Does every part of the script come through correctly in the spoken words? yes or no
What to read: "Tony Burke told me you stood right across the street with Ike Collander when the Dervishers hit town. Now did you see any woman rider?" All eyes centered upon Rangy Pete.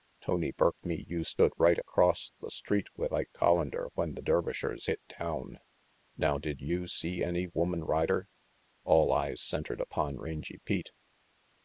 no